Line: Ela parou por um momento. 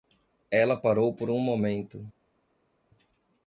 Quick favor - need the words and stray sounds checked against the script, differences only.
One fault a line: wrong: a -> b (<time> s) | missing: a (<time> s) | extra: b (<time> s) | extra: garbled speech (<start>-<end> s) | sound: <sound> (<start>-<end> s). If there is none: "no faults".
no faults